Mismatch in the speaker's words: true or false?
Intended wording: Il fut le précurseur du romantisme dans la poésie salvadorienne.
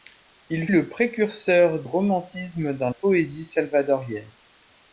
true